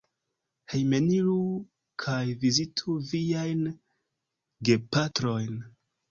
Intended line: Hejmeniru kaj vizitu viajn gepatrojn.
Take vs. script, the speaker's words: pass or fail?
pass